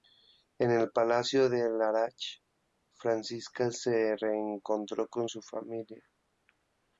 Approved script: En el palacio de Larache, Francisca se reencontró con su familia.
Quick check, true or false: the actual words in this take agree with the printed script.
true